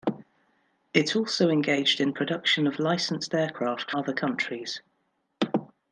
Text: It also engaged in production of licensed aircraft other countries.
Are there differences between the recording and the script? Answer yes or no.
no